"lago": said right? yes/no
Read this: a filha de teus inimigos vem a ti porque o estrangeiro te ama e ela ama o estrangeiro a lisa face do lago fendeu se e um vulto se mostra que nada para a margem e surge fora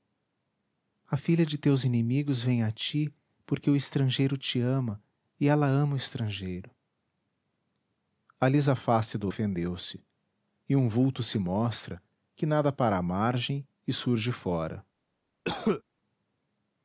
no